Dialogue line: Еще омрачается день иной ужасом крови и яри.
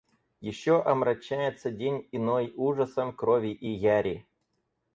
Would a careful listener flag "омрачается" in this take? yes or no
no